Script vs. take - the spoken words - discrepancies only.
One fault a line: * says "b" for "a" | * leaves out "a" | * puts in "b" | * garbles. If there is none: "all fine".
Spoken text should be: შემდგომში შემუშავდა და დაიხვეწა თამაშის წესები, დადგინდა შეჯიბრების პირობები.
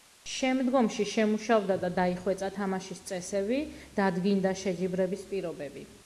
all fine